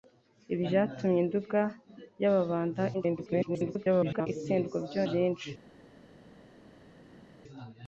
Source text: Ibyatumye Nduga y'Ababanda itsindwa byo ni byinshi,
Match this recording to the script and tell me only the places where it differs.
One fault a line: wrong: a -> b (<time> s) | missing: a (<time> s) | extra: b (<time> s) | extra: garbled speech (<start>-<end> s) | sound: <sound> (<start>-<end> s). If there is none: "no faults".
extra: garbled speech (2.9-4.3 s)
missing: ni (5.0 s)